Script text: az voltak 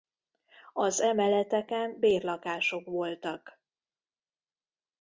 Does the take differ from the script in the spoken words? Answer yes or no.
yes